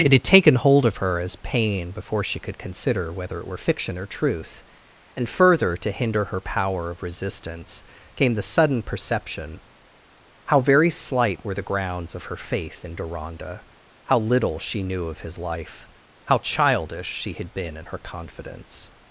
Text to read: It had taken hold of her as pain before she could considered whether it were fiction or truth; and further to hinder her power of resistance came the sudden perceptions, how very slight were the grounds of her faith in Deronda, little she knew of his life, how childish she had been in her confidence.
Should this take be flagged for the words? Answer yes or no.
yes